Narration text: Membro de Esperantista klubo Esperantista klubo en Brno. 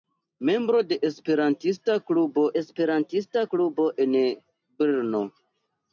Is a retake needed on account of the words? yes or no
no